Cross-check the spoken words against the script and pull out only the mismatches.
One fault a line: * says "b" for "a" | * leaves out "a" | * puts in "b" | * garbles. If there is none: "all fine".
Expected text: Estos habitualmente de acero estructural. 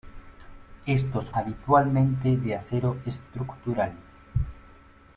all fine